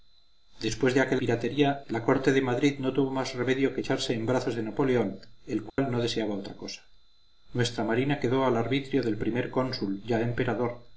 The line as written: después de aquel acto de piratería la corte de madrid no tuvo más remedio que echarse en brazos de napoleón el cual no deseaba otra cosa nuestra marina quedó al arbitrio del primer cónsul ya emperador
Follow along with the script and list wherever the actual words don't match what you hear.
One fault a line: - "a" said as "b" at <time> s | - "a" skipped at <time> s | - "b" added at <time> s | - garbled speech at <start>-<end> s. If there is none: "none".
- "acto de" skipped at 1.2 s